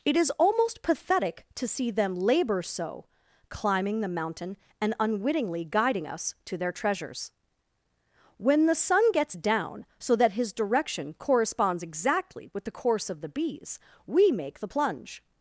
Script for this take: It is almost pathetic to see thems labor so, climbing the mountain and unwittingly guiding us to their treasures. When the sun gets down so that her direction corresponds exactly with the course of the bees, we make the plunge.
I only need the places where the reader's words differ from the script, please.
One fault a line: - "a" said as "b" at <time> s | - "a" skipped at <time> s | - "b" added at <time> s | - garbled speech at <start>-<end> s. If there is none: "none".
- "thems" said as "them" at 1.9 s
- "her" said as "his" at 10.3 s